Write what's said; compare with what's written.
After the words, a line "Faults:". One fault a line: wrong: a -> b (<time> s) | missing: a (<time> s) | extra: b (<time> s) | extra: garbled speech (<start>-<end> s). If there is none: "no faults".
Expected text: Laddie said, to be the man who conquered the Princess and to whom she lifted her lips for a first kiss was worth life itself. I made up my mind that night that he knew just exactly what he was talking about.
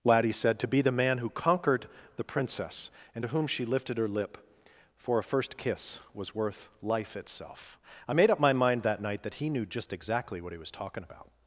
Laddie said, to be the man who conquered the Princess and to whom she lifted her lip for a first kiss was worth life itself. I made up my mind that night that he knew just exactly what he was talking about.
Faults:
wrong: lips -> lip (4.1 s)